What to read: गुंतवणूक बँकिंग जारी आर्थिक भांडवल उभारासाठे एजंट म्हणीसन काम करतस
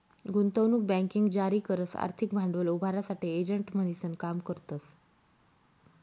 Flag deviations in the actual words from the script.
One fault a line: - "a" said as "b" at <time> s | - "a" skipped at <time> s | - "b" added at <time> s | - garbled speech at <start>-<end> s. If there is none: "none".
- "करस" added at 1.6 s